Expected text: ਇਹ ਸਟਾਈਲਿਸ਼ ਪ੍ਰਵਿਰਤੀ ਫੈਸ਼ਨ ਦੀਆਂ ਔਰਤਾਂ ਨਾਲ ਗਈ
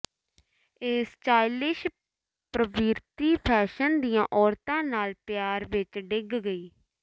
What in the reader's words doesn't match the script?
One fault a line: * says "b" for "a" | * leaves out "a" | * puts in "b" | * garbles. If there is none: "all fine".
* puts in "ਪਿਆਰ ਵਿੱਚ ਡਿੱਗ"